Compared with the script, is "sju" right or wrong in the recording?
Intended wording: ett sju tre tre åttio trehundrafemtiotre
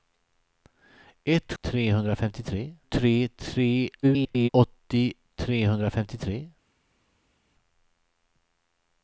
wrong